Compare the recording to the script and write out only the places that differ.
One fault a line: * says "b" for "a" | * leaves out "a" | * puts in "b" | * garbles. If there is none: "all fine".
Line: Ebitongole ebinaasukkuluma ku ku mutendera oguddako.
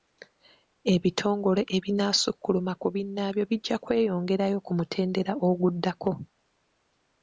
* puts in "binnaabyo bijja kweyongerayo"